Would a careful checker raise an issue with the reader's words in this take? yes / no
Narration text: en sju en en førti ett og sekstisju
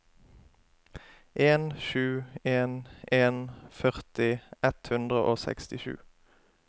yes